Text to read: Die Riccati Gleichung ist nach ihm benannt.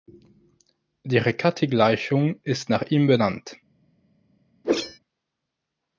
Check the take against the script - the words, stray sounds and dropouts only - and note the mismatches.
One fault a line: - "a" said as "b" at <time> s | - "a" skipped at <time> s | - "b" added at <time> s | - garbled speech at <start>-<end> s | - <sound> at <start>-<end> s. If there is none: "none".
- whoosh at 4.6-5.0 s